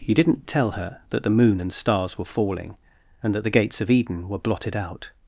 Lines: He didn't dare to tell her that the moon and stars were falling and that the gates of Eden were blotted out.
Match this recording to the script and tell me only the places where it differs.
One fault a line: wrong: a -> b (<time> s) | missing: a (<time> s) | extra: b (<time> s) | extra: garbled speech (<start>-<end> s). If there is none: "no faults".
missing: dare to (0.5 s)